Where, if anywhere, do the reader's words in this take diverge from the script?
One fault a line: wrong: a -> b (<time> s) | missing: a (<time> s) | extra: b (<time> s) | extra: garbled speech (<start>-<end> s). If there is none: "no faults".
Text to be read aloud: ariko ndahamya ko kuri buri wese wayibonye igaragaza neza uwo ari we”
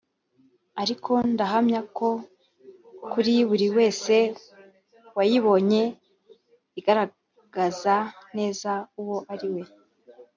no faults